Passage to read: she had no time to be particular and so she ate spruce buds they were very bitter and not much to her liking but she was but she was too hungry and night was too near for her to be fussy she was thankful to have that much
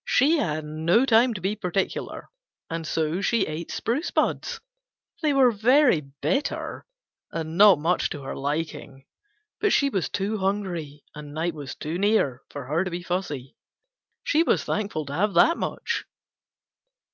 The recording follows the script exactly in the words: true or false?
false